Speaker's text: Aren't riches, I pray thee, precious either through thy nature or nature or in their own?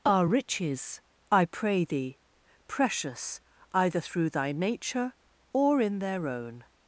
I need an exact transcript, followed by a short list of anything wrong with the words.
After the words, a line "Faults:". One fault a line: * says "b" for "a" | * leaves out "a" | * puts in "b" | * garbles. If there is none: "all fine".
Are riches, I pray thee, precious either through thy nature or in their own?
Faults:
* says "Are" for "Aren't"
* leaves out "nature or"